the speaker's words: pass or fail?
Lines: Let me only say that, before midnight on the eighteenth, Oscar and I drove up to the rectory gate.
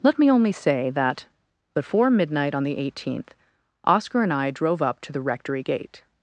pass